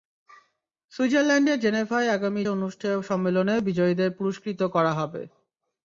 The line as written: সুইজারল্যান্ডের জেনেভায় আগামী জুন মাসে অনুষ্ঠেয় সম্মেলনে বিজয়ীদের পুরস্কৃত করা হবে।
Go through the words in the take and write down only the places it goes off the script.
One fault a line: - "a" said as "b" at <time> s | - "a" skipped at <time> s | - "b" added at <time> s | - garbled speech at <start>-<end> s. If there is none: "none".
- "জুন মাসে" skipped at 2.4 s